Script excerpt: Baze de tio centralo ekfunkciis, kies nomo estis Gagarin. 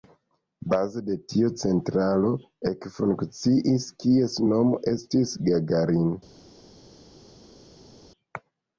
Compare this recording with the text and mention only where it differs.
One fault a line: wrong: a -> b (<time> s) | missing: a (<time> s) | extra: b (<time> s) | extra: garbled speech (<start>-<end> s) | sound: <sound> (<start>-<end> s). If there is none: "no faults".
no faults